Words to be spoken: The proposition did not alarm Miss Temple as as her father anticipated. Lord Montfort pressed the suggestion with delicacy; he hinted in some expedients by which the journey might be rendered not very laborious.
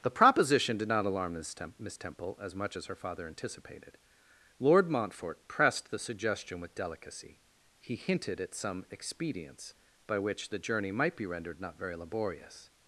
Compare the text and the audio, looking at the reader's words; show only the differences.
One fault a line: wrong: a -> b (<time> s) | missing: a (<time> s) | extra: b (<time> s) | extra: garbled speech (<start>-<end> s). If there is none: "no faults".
extra: much (2.5 s)
wrong: in -> at (8.4 s)